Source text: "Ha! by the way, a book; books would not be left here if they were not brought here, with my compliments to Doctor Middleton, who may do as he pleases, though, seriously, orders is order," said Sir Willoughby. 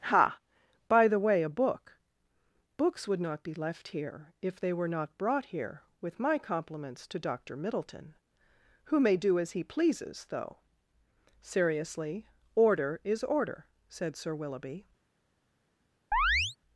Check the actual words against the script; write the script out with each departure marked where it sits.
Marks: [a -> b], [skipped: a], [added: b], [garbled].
"Ha! by the way, a book; books would not be left here if they were not brought here, with my compliments to Doctor Middleton, who may do as he pleases, though, seriously, [orders -> order] is order," said Sir Willoughby.